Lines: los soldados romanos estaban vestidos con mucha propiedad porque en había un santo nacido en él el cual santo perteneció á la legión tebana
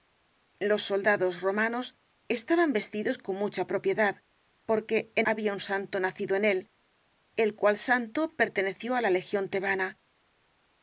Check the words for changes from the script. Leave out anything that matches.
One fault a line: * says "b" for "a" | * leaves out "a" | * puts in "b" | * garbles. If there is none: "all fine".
all fine